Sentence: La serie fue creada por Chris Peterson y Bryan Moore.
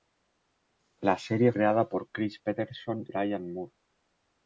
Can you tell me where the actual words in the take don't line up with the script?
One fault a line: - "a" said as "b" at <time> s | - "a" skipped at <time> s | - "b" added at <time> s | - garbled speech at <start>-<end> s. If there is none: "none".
- "fue" skipped at 1.5 s
- "y" skipped at 3.1 s